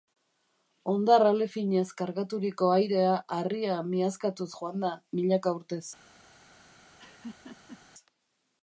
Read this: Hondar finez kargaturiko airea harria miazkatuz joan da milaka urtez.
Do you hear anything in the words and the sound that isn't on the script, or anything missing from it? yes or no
yes